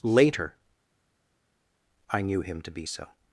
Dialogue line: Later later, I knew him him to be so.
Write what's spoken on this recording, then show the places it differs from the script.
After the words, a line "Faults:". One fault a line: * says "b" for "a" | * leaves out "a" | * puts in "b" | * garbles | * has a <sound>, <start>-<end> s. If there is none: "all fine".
Later, I knew him to be so.
Faults:
* leaves out "later"
* leaves out "him"